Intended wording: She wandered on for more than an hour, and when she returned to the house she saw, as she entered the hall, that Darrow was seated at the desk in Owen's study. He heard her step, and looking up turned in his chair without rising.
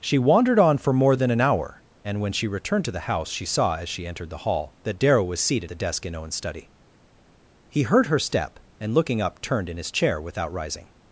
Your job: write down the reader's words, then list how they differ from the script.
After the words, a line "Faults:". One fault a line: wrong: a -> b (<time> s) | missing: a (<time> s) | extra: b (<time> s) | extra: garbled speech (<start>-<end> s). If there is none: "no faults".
She wandered on for more than an hour, and when she returned to the house she saw, as she entered the hall, that Darrow was seated the desk in Owen's study. He heard her step, and looking up turned in his chair without rising.
Faults:
missing: at (5.7 s)